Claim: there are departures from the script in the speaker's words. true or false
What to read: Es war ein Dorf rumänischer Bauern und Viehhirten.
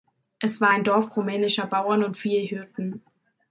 false